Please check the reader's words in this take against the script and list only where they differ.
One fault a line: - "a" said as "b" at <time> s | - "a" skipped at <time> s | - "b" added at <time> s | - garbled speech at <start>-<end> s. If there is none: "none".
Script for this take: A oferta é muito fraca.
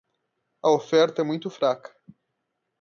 none